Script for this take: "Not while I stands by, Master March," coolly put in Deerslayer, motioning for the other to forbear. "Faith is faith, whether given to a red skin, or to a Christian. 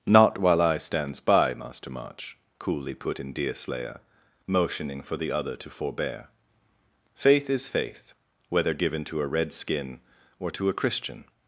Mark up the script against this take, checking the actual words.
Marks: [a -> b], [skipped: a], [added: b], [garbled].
"Not while I stands by, Master March," coolly put in Deerslayer, motioning for the other to forbear. "Faith is faith, whether given to a red skin, or to a Christian.